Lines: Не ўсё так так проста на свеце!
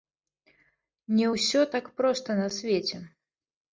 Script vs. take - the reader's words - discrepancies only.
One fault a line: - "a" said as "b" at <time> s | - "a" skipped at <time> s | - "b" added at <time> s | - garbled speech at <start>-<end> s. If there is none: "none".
- "так" skipped at 1.9 s